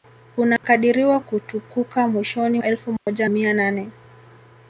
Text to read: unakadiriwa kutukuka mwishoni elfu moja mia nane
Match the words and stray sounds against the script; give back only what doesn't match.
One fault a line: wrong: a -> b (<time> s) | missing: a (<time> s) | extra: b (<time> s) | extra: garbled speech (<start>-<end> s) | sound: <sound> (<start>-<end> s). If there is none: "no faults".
sound: dropout (0.6-0.6 s)
sound: dropout (3.0-3.1 s)